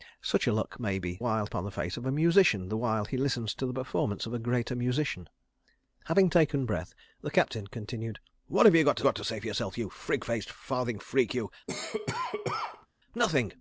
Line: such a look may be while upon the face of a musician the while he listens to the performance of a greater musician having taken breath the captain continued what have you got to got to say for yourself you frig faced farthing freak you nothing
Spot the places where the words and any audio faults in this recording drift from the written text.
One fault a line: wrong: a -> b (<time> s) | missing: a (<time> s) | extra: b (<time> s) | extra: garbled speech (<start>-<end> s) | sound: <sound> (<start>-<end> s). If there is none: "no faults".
sound: cough (11.7-12.9 s)